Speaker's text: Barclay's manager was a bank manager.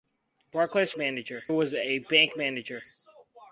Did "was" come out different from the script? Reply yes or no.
no